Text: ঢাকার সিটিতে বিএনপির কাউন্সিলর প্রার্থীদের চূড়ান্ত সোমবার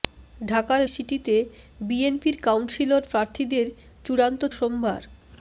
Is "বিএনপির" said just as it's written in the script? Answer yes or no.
yes